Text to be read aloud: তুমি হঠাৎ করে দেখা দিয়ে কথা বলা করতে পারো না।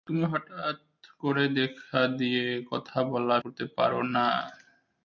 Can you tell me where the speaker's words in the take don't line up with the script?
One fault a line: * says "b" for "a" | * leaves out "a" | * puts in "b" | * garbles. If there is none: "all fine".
all fine